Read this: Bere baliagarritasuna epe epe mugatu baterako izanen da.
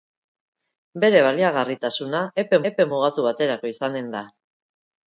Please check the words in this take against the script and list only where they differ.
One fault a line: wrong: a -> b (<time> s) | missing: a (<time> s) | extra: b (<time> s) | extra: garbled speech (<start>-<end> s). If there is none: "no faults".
no faults